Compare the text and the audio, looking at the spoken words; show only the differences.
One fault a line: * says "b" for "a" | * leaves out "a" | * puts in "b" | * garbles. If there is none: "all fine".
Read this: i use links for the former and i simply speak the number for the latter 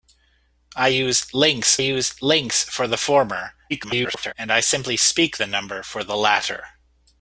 * puts in "use links"
* garbles